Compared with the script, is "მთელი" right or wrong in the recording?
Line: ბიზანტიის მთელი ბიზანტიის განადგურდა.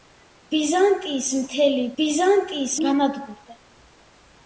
right